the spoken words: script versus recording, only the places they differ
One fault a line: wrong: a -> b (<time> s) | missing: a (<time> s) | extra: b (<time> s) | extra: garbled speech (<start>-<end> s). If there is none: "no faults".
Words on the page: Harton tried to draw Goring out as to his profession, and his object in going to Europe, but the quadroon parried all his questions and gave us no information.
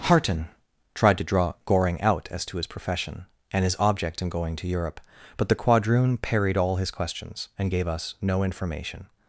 no faults